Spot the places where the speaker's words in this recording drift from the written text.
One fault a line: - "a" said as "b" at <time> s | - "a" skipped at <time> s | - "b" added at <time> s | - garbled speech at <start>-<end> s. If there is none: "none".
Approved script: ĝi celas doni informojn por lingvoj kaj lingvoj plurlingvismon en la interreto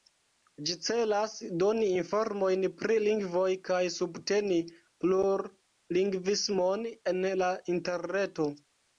- "por" said as "pri" at 2.8 s
- "lingvoj" said as "subteni" at 4.0 s